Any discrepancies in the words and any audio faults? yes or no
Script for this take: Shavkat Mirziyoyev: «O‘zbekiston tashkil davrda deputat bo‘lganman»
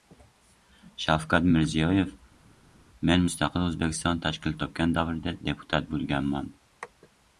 yes